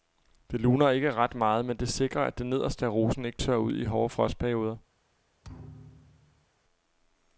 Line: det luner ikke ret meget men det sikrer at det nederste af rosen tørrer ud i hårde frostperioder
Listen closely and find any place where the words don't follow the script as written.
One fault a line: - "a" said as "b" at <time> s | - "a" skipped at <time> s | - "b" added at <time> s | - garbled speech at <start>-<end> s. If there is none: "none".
- "ikke" added at 3.2 s